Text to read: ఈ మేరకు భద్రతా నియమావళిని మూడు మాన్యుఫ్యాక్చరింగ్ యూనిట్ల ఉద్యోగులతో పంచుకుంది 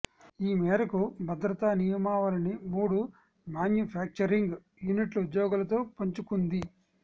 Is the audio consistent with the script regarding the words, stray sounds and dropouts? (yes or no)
yes